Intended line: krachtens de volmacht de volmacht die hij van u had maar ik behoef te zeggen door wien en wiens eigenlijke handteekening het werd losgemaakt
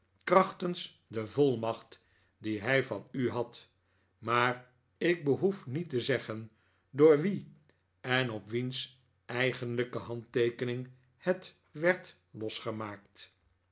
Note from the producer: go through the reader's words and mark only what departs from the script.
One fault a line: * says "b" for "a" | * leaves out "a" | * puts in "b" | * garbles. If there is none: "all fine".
* leaves out "de volmacht"
* puts in "niet"
* puts in "op"